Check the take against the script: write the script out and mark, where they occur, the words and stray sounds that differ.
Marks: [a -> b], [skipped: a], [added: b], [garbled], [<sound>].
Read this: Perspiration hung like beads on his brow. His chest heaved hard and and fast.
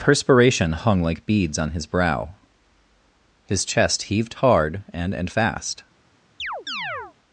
Perspiration hung like beads on his brow. His chest heaved hard and and fast. [chirp]